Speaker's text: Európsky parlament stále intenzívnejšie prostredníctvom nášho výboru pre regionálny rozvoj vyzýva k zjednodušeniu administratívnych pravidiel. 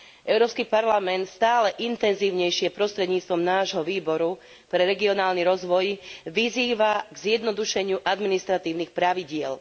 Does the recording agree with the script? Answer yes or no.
yes